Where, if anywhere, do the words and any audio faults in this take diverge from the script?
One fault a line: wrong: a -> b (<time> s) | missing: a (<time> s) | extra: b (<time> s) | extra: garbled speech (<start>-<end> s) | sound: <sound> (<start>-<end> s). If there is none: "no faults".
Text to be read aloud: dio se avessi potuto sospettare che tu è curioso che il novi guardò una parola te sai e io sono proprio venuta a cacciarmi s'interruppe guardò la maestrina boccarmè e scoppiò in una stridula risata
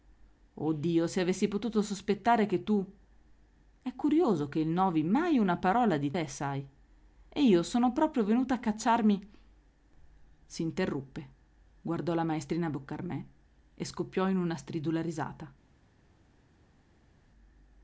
wrong: guardò -> mai (5.0 s)
extra: di (6.0 s)